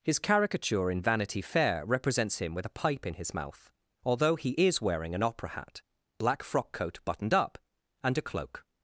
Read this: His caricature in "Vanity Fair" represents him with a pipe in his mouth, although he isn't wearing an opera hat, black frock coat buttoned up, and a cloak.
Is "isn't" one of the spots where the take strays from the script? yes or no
yes